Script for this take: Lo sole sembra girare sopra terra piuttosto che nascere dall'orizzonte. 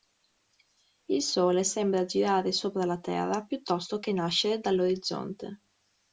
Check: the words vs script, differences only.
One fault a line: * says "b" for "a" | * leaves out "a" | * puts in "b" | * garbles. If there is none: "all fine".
* says "Il" for "Lo"
* puts in "la"